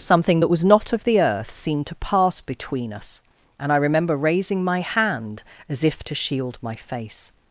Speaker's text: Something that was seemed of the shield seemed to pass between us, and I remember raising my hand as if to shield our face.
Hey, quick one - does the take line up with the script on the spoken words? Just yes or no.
no